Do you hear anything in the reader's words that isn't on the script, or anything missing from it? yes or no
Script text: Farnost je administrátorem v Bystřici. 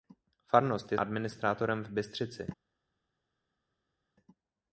no